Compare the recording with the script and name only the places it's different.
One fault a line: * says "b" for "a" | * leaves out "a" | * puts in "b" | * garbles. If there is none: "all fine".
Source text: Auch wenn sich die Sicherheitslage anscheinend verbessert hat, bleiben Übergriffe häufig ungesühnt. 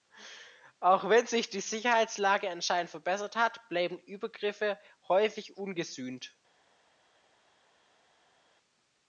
all fine